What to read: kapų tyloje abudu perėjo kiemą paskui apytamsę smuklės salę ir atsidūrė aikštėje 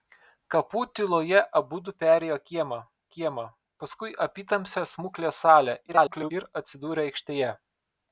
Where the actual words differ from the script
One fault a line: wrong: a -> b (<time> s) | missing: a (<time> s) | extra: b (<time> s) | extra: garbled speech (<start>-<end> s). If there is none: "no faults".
extra: kiemą (3.2 s)
extra: garbled speech (5.9-6.3 s)